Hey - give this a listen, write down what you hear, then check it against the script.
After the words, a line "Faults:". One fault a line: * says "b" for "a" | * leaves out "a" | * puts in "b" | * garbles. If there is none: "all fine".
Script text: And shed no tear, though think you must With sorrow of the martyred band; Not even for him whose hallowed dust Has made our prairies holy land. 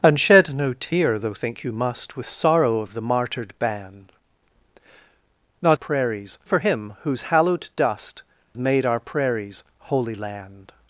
And shed no tear, though think you must With sorrow of the martyred band; Not prairies for him whose hallowed dust Made our prairies holy land.
Faults:
* says "prairies" for "even"
* leaves out "Has"